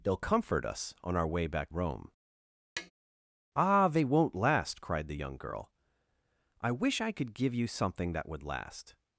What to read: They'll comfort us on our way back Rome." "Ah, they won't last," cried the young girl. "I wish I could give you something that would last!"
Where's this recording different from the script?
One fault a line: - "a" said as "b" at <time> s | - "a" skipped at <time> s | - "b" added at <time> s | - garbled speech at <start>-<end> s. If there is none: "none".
none